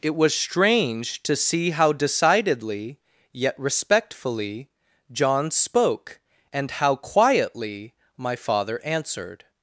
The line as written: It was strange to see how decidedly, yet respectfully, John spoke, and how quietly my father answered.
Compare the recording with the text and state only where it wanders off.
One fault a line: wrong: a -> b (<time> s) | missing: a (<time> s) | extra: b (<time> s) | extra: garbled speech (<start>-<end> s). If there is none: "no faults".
no faults